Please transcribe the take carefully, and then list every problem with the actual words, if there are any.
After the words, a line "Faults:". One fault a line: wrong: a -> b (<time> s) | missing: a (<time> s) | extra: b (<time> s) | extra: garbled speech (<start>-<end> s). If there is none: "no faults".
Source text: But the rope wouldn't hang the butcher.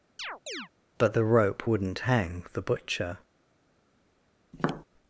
But the rope wouldn't hang the butcher.
Faults:
no faults